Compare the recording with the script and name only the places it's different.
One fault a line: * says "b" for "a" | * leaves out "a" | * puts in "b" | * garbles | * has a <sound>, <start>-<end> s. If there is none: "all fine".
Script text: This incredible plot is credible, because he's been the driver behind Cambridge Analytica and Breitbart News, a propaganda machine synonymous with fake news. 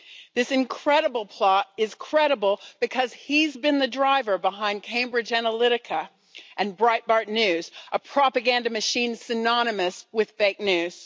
all fine